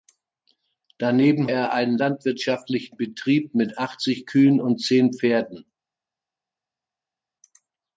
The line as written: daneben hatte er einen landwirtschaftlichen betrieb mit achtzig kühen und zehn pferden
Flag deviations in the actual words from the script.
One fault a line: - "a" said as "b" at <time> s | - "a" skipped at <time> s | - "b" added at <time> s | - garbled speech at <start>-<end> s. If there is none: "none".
- "hatte" skipped at 1.5 s